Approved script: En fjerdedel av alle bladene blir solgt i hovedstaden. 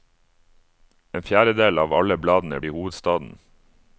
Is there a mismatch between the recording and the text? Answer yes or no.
yes